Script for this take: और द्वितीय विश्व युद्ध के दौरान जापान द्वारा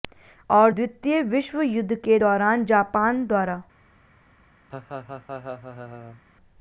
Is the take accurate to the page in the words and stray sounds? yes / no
no